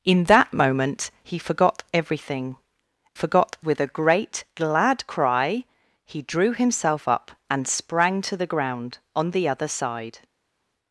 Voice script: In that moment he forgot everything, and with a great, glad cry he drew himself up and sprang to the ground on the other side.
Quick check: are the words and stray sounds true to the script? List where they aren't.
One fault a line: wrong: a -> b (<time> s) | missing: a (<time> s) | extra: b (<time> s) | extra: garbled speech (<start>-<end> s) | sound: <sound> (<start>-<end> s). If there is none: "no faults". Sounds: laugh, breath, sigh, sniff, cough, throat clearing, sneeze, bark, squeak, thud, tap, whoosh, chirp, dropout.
wrong: and -> forgot (3.1 s)